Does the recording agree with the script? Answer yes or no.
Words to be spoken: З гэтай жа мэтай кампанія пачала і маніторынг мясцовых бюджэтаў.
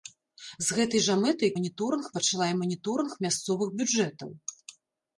no